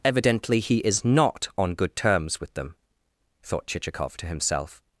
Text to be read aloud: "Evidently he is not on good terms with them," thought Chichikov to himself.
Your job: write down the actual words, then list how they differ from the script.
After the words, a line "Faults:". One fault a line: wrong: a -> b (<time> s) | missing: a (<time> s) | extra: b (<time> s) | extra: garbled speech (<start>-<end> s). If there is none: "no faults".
"Evidently he is not on good terms with them," thought Chichikov to himself.
Faults:
no faults